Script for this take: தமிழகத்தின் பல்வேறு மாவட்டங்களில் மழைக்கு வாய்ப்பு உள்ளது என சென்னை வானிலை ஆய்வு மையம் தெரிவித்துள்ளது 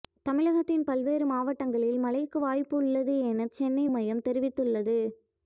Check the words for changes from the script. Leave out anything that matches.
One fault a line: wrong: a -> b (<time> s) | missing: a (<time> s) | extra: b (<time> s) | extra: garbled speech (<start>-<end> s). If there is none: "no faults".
missing: வானிலை ஆய்வு (3.9 s)